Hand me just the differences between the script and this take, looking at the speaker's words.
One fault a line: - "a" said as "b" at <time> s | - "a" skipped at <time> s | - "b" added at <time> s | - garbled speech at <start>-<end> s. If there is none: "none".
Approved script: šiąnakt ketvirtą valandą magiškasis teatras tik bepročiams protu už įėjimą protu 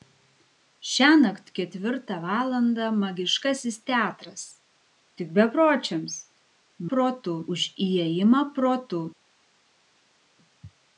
none